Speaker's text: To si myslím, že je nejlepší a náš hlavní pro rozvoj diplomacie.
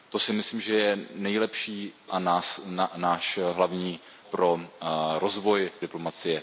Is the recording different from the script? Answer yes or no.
no